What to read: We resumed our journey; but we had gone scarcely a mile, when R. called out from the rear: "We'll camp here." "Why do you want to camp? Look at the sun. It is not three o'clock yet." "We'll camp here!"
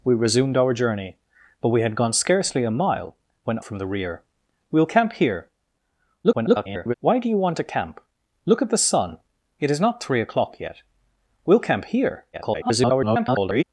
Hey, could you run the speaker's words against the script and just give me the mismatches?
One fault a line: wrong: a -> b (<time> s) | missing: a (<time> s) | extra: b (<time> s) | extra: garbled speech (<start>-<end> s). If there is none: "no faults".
missing: R called out (3.6 s)
extra: garbled speech (6.2-6.9 s)
extra: garbled speech (12.3-13.6 s)